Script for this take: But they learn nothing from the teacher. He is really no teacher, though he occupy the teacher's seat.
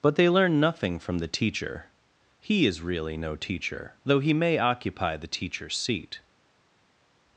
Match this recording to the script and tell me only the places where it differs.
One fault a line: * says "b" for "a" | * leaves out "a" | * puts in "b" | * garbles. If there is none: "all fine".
* puts in "may"